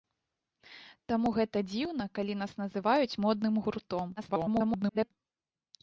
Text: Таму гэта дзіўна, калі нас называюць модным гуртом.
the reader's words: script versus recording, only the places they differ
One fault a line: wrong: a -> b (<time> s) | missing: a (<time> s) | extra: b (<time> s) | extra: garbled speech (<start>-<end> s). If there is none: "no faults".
extra: garbled speech (4.2-5.1 s)